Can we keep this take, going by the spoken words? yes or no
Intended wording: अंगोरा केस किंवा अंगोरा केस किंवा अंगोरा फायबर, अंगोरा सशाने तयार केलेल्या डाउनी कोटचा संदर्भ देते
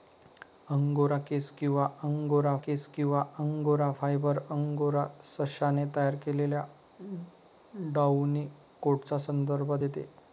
yes